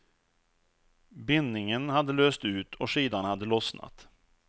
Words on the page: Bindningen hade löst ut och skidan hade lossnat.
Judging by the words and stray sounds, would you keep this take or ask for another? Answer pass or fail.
pass